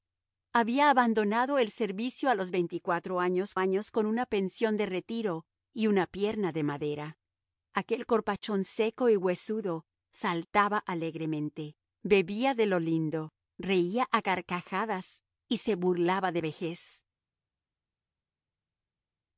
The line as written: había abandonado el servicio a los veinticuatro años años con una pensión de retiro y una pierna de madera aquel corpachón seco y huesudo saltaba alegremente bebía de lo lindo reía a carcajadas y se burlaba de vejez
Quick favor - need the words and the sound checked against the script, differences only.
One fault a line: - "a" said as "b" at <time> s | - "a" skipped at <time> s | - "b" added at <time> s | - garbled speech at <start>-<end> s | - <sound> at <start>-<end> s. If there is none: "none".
none